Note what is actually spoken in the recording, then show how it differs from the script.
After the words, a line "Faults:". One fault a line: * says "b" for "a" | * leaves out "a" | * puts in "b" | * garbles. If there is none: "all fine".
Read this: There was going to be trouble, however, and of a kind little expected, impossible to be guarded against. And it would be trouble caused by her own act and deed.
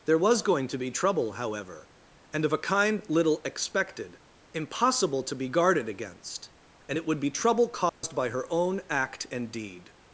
There was going to be trouble, however, and of a kind little expected, impossible to be guarded against. And it would be trouble caused by her own act and deed.
Faults:
all fine